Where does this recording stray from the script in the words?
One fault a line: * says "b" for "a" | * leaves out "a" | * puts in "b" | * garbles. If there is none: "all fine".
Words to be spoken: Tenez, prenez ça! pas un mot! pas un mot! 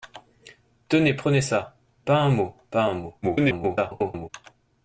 * garbles